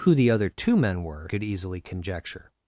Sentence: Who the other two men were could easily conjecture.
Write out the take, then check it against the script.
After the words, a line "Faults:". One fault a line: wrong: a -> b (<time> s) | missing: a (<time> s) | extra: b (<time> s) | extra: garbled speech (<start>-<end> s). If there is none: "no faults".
Who the other two men were could easily conjecture.
Faults:
no faults